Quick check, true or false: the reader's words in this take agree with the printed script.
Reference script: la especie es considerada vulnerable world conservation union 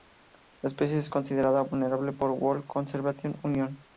false